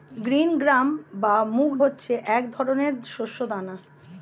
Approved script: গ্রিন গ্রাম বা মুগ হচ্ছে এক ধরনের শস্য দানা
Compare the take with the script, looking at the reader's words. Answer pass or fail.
pass